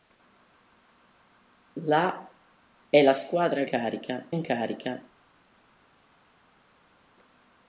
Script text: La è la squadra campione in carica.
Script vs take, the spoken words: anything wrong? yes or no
yes